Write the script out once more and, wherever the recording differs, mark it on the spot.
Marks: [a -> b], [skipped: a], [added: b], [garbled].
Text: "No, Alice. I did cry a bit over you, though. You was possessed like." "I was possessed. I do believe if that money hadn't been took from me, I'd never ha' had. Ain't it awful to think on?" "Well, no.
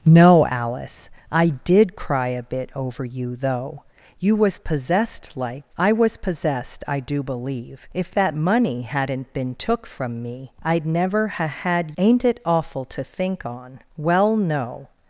"No, Alice. I did cry a bit over you, though. You was possessed like." "I was possessed. I do believe if that money hadn't been took from me, I'd never ha' had. Ain't it awful to think on?" "Well, no.